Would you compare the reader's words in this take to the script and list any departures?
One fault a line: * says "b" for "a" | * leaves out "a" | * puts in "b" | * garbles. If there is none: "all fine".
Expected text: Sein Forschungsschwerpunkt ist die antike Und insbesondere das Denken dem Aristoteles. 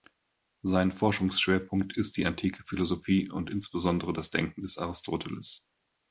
* puts in "Philosophie"
* says "des" for "dem"